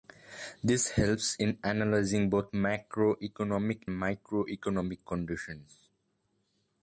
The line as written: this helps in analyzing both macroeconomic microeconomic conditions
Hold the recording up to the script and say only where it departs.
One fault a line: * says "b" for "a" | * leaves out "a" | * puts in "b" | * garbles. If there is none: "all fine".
all fine